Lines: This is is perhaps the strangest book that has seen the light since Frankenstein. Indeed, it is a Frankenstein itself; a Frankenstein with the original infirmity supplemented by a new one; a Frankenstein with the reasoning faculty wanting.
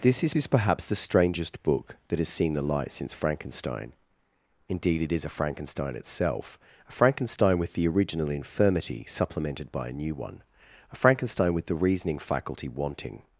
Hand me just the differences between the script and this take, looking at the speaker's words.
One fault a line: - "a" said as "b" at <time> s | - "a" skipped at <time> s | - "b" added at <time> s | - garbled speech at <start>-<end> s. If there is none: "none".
none